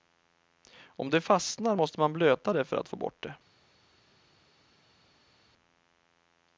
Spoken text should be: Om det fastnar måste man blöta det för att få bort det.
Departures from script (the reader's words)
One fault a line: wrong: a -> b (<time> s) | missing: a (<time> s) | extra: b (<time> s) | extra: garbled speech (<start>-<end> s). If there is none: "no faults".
no faults